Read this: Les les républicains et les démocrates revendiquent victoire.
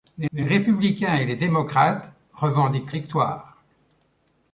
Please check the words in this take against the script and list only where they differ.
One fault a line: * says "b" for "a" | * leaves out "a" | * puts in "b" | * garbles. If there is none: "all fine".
all fine